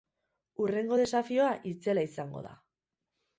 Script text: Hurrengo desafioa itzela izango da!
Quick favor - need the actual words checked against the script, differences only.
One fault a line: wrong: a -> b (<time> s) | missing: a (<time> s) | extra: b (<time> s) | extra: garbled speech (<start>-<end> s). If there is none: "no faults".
no faults